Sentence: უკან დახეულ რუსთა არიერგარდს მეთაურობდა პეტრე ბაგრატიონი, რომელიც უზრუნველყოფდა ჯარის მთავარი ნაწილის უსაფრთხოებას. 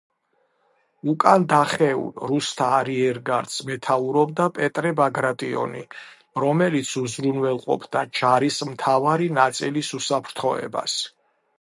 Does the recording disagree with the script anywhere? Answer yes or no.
no